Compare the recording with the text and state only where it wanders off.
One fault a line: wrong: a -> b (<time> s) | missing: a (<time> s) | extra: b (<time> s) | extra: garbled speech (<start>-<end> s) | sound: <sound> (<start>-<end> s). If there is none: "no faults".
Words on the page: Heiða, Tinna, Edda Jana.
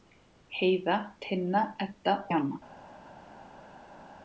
no faults